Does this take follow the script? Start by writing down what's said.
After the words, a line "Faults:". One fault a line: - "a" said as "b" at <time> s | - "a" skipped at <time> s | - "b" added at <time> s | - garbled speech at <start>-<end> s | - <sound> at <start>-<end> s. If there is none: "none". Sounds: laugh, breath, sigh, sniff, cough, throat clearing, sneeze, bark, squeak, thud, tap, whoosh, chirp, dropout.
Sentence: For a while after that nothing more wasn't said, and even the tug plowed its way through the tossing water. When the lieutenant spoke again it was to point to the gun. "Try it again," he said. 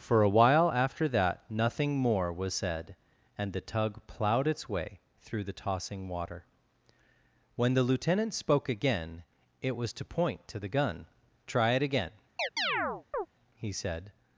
For a while after that nothing more was said, and the tug plowed its way through the tossing water. When the lieutenant spoke again it was to point to the gun. "Try it again," he said.
Faults:
- "wasn't" said as "was" at 2.3 s
- "even" skipped at 3.5 s
- chirp at 12.4-13.3 s